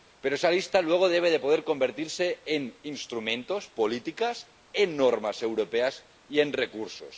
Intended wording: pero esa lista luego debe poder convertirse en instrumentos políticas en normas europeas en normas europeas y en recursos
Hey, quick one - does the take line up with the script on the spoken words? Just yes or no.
no